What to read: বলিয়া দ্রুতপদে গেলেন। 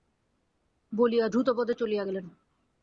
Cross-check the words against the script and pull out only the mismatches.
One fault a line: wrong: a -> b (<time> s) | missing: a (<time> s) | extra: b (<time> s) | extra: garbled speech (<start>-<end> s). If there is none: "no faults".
extra: চলিয়া (1.7 s)